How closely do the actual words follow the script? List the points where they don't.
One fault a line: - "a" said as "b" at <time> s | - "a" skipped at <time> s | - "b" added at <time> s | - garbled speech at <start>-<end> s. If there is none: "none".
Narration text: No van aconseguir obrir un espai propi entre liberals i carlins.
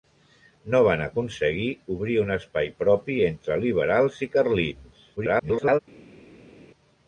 - garbled speech at 5.2-5.8 s